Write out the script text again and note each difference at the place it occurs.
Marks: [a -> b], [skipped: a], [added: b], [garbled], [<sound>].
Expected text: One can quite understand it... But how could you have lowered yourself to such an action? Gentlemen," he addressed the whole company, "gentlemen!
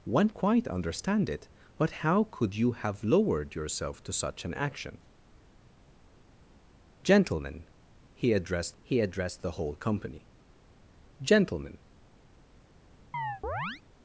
One [skipped: can] quite understand it... But how could you have lowered yourself to such an action? Gentlemen," he addressed [added: he addressed] the whole company, "gentlemen! [chirp]